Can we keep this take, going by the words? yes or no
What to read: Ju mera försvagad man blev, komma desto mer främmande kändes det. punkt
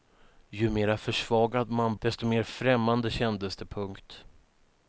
no